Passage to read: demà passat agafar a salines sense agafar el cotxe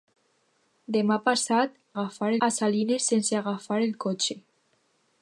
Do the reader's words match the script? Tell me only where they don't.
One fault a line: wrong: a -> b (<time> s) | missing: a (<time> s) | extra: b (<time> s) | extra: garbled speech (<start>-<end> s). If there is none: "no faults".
no faults